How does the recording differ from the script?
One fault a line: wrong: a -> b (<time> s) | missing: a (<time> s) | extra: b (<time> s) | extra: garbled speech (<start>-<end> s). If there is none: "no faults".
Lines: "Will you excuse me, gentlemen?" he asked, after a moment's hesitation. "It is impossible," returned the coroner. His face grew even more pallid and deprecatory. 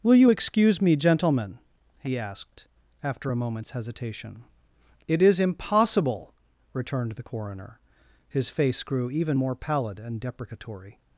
no faults